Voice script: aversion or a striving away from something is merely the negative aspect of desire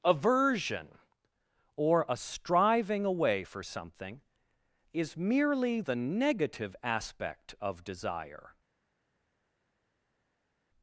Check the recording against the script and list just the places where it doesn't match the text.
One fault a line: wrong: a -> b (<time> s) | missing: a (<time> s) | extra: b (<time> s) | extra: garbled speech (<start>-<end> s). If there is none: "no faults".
wrong: from -> for (3.4 s)